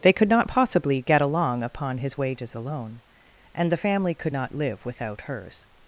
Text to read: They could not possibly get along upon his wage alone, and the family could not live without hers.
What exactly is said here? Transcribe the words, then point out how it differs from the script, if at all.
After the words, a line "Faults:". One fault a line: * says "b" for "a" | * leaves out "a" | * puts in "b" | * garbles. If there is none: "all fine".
They could not possibly get along upon his wages alone, and the family could not live without hers.
Faults:
* says "wages" for "wage"